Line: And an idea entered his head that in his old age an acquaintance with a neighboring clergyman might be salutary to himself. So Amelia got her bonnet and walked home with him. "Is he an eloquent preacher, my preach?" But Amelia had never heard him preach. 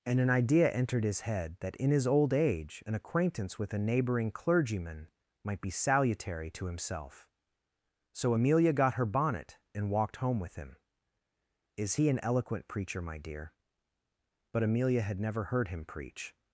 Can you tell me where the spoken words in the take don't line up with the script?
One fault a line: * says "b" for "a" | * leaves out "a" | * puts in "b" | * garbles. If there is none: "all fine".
* says "dear" for "preach"